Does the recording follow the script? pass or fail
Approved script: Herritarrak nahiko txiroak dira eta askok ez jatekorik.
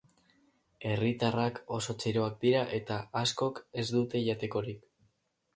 fail